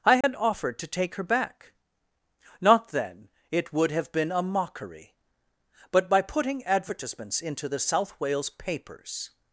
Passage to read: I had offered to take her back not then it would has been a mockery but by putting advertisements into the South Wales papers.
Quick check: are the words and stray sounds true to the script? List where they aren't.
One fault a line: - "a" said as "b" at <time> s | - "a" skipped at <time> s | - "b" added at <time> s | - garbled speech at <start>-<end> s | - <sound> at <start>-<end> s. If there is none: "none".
- dropout at 0.2-0.2 s
- "has" said as "have" at 3.9 s